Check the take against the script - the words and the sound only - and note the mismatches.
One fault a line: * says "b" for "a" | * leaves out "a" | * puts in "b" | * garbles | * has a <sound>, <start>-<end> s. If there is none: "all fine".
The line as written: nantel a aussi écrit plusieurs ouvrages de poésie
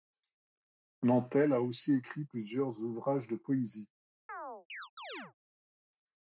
* has a chirp, 4.3-5.3 s